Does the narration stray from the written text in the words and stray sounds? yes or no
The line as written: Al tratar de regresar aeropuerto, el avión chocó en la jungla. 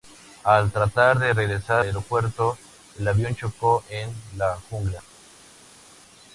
no